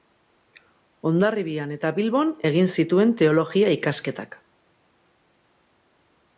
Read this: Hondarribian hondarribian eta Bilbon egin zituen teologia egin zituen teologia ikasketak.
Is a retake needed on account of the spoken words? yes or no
yes